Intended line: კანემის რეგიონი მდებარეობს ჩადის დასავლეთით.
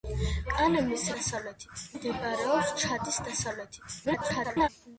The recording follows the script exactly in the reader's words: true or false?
false